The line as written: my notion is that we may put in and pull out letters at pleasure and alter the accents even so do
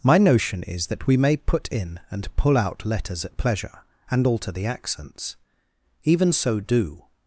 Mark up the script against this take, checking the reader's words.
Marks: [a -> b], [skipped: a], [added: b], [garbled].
my notion is that we may put in and pull out letters at pleasure and alter the accents even so do